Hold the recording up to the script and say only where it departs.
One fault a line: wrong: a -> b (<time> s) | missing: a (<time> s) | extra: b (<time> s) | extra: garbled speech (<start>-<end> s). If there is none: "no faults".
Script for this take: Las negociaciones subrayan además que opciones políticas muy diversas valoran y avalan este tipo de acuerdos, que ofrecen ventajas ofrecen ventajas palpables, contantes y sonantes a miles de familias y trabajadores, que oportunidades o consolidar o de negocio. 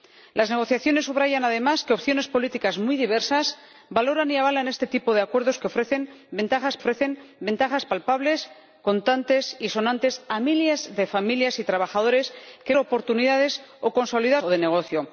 no faults